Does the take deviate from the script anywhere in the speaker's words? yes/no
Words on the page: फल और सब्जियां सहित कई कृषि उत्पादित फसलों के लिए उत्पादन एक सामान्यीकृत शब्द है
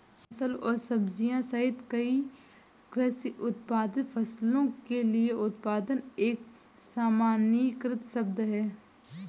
no